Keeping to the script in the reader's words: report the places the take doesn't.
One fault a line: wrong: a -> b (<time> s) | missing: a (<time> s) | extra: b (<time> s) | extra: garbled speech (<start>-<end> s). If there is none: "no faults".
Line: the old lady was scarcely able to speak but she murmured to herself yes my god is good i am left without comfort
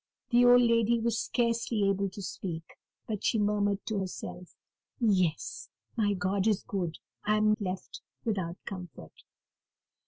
no faults